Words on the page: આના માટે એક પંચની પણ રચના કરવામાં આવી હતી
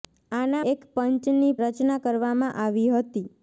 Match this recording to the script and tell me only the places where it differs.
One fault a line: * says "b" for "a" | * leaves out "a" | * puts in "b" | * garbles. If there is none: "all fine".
* leaves out "માટે"
* leaves out "પણ"